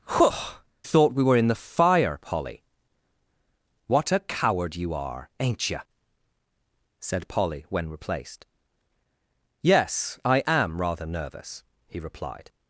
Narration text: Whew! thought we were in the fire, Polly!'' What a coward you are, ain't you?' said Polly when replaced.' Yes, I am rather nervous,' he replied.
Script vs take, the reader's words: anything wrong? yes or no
no